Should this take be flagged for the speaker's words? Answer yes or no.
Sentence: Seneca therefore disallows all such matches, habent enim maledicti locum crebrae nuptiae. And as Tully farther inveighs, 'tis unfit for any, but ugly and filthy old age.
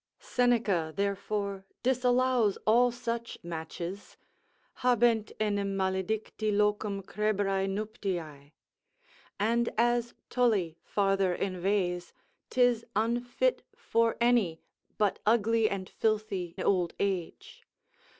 no